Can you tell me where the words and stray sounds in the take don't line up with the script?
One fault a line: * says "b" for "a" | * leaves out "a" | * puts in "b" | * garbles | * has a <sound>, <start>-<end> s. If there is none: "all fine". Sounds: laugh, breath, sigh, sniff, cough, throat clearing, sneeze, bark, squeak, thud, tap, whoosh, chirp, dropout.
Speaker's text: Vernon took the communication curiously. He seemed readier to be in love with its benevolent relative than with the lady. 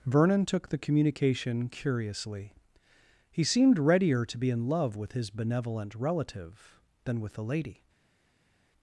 * says "his" for "its"